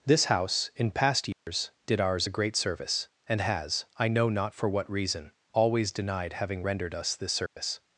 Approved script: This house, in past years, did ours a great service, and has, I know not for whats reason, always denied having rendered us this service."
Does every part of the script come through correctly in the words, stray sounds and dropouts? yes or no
no